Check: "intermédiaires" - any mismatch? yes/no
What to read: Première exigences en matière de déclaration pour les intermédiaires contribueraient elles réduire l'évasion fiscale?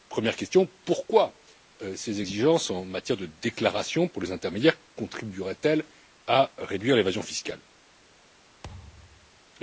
no